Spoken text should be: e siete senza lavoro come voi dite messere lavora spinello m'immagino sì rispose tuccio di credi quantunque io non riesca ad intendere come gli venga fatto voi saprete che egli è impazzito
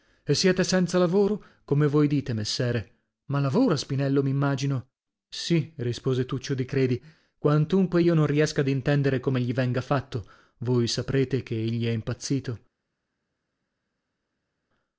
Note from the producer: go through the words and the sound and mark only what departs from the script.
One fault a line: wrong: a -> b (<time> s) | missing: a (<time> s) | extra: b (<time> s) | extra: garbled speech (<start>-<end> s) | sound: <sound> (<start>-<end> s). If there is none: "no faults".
extra: ma (3.2 s)